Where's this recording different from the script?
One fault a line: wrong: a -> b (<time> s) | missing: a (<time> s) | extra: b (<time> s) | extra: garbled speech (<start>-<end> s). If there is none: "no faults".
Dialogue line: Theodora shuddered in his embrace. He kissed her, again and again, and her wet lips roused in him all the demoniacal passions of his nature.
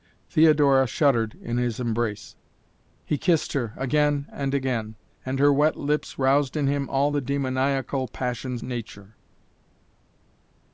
missing: of his (8.6 s)